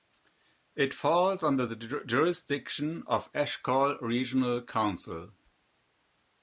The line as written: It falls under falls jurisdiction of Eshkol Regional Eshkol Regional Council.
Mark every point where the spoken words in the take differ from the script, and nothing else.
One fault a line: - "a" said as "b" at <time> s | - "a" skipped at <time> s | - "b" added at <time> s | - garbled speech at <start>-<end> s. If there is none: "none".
- "falls" said as "the" at 1.6 s
- "Eshkol Regional" skipped at 4.6 s